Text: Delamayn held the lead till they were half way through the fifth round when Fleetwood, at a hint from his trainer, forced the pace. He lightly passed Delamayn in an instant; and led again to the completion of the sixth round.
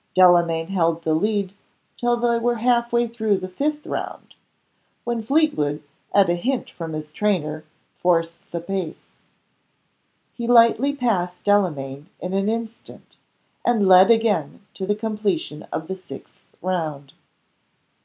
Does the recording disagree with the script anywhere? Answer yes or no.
no